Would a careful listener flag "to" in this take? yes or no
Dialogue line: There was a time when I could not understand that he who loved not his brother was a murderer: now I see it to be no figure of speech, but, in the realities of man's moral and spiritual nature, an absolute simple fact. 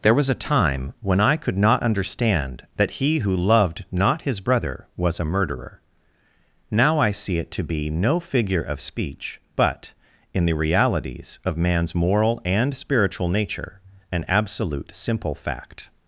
no